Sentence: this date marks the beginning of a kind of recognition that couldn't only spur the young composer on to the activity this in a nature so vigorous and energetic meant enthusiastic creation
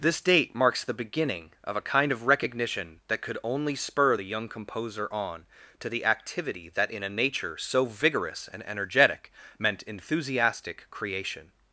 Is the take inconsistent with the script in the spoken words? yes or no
yes